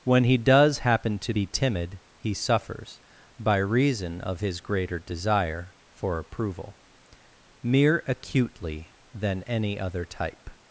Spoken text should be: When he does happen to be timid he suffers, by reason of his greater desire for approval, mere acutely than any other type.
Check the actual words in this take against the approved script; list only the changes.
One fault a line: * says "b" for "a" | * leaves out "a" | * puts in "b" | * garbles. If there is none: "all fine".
all fine